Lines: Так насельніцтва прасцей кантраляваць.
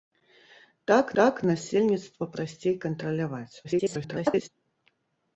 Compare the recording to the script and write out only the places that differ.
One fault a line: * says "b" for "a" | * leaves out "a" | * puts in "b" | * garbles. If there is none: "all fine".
* puts in "так"
* garbles